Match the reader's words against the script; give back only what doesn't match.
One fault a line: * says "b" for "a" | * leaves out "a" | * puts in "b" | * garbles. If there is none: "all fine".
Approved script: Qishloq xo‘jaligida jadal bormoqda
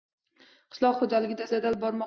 all fine